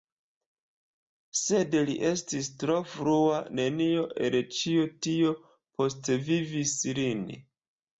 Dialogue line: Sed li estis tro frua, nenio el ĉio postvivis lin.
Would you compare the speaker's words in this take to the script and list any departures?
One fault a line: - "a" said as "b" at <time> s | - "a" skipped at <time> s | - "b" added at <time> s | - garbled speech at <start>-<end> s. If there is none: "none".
- "tio" added at 5.1 s